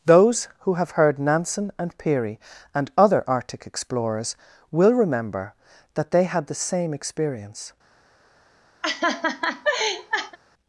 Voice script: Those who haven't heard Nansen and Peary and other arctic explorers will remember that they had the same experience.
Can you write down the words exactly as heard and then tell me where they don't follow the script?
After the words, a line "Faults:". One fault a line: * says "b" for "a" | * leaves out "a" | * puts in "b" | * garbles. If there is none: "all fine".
Those who have heard Nansen and Peary and other arctic explorers will remember that they had the same experience.
Faults:
* says "have" for "haven't"